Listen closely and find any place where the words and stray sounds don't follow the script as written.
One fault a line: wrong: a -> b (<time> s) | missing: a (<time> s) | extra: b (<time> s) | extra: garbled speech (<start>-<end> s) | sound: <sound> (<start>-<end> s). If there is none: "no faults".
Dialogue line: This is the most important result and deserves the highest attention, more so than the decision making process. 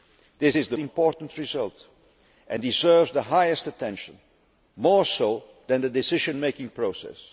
missing: most (0.8 s)